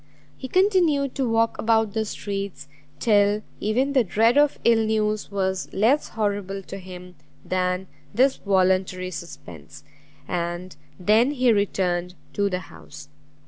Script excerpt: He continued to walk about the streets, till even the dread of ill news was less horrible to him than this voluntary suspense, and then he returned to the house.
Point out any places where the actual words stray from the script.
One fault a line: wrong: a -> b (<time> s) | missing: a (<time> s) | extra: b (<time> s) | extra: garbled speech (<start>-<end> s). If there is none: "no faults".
no faults